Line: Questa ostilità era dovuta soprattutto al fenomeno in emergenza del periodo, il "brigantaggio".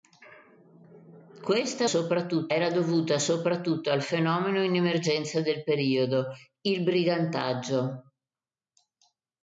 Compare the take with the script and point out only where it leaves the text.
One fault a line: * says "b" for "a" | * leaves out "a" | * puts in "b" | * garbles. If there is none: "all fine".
* says "soprattutto" for "ostilità"